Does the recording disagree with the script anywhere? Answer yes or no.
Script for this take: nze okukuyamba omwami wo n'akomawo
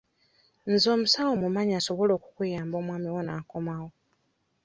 yes